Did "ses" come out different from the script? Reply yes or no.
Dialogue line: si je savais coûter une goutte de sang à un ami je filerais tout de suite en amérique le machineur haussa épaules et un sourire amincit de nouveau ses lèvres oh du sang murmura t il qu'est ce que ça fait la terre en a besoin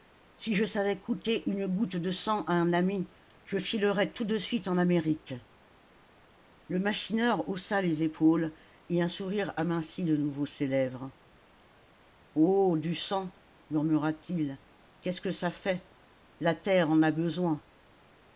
no